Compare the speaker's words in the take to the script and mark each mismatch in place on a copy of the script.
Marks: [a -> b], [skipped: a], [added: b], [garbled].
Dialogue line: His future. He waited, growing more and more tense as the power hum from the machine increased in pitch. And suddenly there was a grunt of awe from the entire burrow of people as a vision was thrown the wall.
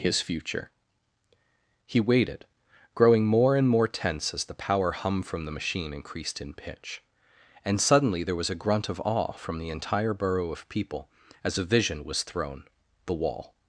His future. He waited, growing more and more tense as the power hum from the machine increased in pitch. And suddenly there was a grunt of awe from the entire burrow of people as a vision was thrown the wall.